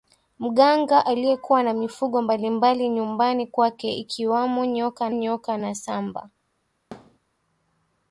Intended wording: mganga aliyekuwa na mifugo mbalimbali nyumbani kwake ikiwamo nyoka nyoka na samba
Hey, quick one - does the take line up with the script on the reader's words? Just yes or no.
yes